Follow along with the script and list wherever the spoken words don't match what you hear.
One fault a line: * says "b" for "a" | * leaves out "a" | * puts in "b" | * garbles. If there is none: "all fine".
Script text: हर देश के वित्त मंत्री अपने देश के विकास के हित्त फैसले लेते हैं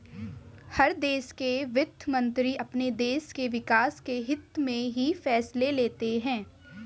* puts in "में ही"